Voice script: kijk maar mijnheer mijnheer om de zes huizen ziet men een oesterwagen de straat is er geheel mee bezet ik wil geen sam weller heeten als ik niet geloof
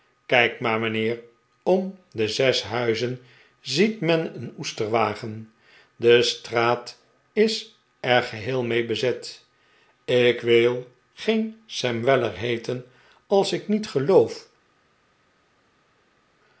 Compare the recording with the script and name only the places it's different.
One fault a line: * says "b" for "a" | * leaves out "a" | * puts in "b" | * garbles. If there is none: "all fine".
* leaves out "mijnheer"